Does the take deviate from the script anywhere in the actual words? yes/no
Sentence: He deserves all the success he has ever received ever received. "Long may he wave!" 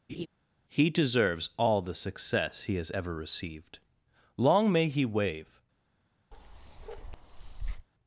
yes